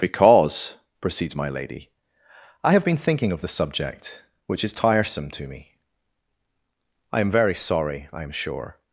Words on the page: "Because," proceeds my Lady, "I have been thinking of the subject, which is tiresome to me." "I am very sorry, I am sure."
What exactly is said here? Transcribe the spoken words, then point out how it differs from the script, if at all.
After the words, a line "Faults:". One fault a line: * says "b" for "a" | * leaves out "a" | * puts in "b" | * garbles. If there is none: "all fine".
"Because," proceeds my Lady, "I have been thinking of the subject, which is tiresome to me." "I am very sorry, I am sure."
Faults:
all fine